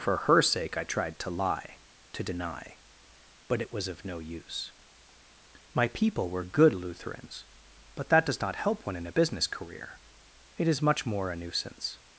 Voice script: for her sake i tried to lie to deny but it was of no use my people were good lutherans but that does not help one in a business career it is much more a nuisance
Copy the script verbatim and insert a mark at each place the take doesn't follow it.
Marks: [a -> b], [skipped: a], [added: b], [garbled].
for her sake i tried to lie to deny but it was of no use my people were good lutherans but that does not help one in a business career it is much more a nuisance